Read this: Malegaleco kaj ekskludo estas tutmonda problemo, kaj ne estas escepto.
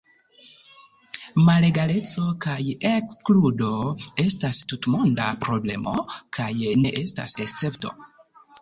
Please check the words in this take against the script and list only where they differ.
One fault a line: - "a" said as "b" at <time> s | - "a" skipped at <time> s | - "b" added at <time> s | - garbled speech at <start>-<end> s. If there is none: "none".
none